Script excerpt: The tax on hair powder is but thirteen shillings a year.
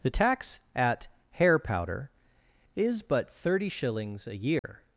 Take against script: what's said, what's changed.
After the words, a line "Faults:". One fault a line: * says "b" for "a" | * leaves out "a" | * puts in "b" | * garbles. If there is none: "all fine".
The tax at hair powder is but thirty shillings a year.
Faults:
* says "at" for "on"
* says "thirty" for "thirteen"